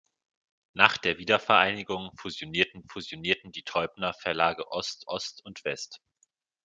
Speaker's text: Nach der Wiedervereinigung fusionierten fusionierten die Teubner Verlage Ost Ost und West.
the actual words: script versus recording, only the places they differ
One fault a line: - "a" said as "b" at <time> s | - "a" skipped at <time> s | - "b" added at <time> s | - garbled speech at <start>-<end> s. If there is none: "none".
none